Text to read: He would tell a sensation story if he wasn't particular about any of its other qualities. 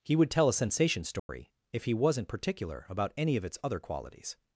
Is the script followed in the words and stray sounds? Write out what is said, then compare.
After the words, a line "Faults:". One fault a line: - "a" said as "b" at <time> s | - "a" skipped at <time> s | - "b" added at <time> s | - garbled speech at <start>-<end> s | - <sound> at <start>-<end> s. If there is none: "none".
He would tell a sensation story if he wasn't particular about any of its other qualities.
Faults:
- dropout at 1.2-1.3 s